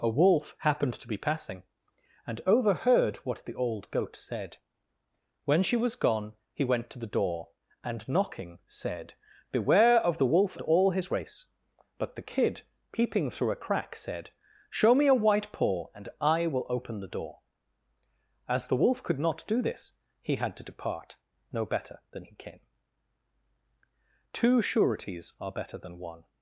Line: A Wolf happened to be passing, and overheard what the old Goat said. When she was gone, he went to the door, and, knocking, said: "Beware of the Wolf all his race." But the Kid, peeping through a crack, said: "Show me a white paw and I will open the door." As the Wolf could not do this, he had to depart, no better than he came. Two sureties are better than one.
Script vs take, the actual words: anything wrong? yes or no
no